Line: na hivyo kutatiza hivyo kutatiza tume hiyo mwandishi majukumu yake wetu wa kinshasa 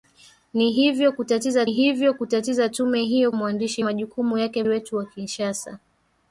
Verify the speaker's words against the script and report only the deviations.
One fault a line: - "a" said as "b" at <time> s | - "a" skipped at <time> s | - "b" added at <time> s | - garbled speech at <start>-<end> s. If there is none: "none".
none